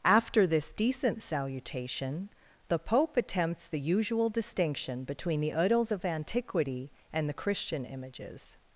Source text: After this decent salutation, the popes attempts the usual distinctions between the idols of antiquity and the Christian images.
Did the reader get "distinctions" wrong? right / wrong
wrong